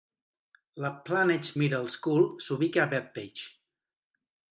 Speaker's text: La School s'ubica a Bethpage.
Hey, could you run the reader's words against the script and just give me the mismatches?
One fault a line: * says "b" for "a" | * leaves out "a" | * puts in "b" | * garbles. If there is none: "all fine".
* puts in "Plainedge Middle"